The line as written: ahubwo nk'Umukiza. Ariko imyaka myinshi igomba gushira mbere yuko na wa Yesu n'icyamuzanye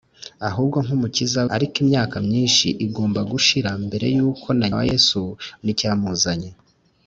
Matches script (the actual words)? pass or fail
pass